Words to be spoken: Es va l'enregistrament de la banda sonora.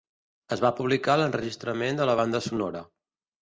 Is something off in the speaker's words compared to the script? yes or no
yes